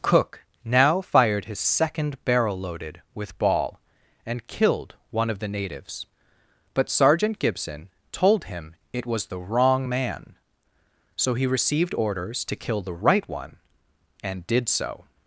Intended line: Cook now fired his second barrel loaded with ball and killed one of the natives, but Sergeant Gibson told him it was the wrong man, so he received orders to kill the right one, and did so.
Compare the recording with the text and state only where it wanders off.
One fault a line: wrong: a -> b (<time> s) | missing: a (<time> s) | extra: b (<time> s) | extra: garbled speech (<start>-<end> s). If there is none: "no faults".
no faults